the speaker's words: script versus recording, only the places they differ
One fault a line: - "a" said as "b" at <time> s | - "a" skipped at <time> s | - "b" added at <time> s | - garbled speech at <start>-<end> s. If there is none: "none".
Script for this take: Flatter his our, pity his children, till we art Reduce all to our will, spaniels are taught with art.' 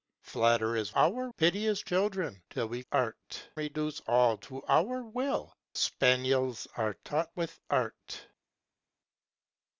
none